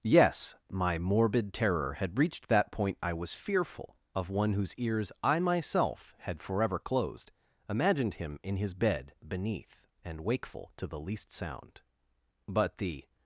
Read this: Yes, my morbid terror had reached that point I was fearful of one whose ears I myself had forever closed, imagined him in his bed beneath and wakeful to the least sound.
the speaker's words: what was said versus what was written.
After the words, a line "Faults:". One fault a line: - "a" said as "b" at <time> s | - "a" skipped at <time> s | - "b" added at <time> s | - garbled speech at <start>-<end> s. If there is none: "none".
Yes, my morbid terror had reached that point I was fearful of one whose ears I myself had forever closed, imagined him in his bed beneath and wakeful to the least sound. But the
Faults:
- "But the" added at 12.5 s